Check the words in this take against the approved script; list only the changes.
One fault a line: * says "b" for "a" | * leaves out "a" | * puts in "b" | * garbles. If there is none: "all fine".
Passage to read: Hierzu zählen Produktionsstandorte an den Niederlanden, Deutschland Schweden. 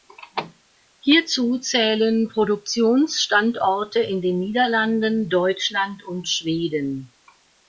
* says "in" for "an"
* puts in "und"